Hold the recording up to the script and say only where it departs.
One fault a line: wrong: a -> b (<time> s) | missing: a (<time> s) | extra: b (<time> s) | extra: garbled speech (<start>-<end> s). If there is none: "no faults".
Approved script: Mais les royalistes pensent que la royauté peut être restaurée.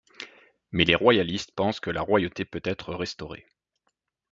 no faults